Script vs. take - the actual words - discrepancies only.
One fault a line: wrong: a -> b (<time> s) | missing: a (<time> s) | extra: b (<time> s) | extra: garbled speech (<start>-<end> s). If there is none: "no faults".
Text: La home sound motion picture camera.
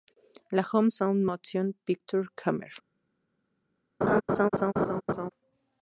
no faults